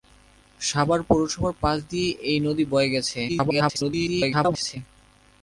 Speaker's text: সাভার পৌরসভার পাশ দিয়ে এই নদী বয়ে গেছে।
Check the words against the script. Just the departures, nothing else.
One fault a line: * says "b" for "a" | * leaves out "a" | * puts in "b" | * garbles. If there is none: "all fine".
* garbles